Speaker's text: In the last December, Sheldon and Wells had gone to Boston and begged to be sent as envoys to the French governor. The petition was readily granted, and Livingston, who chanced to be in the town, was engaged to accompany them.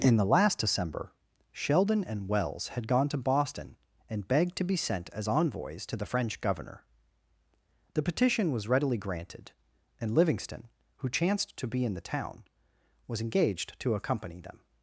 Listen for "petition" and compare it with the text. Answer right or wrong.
right